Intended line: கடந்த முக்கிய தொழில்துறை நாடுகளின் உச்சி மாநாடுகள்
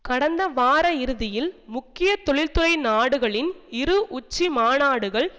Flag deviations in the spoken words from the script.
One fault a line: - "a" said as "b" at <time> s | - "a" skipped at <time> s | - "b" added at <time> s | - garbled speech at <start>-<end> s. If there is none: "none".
- "வார இறுதியில்" added at 0.5 s
- "இரு" added at 3.7 s